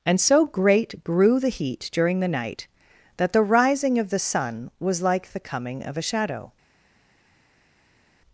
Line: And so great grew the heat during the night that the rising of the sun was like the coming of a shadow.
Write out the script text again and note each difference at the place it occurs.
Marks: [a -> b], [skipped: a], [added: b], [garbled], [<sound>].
And so great grew the heat during the night that the rising of the sun was like the coming of a shadow.